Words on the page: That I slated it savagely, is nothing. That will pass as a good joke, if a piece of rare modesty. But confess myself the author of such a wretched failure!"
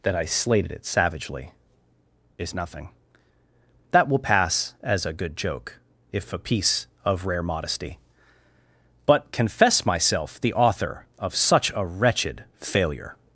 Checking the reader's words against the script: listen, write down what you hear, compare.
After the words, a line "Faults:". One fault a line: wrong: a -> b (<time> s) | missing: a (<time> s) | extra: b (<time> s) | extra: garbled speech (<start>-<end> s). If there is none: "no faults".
That I slated it savagely, is nothing. That will pass as a good joke, if a piece of rare modesty. But confess myself the author of such a wretched failure!"
Faults:
no faults